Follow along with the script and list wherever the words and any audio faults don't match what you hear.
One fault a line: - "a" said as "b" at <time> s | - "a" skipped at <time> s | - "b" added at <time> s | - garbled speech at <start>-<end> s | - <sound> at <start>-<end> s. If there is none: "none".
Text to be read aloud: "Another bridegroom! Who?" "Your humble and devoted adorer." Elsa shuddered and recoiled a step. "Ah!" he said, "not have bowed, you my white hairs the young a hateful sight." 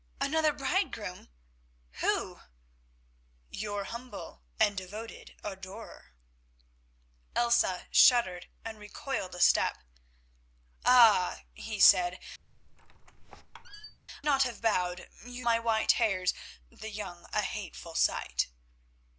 - squeak at 12.4-14.0 s